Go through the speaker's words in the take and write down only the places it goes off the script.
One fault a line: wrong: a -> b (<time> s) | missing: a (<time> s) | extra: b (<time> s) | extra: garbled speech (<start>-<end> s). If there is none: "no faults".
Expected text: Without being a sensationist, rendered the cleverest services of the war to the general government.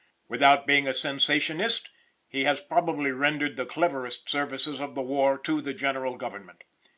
extra: he has probably (2.3 s)